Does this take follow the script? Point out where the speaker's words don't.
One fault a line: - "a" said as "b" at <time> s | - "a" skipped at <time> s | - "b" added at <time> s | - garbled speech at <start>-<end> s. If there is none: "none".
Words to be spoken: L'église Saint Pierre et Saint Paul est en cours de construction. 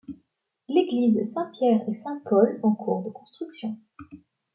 - "est" skipped at 2.6 s